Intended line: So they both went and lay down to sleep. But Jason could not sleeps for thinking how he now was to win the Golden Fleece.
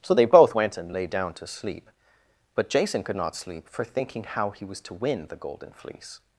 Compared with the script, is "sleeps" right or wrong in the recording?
wrong